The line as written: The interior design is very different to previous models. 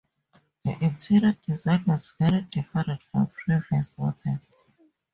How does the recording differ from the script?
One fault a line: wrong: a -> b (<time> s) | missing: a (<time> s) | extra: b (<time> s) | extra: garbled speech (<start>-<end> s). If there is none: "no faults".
wrong: is -> was (1.9 s)
wrong: to -> from (3.0 s)